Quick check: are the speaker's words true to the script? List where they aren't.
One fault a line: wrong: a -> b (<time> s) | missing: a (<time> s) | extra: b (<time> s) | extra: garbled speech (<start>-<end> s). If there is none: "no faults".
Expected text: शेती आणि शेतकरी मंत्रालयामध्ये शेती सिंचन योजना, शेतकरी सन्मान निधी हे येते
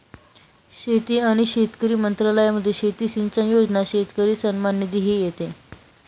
no faults